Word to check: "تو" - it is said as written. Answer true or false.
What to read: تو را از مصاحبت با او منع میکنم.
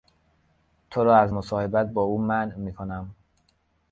true